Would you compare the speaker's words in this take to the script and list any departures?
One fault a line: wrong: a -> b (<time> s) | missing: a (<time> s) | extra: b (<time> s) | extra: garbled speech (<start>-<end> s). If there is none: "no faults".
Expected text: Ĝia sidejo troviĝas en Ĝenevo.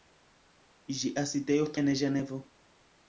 missing: troviĝas (1.7 s)